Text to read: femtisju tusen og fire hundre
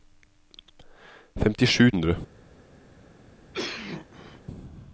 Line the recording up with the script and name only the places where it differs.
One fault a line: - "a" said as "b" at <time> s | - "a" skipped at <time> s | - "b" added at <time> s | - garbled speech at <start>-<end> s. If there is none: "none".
- "tusen og fire" skipped at 1.9 s